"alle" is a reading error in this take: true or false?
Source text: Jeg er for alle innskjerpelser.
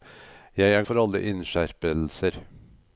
false